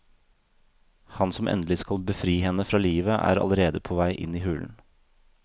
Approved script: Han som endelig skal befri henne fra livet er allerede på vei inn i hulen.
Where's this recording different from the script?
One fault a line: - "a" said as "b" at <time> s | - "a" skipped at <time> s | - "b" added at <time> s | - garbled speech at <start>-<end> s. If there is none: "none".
none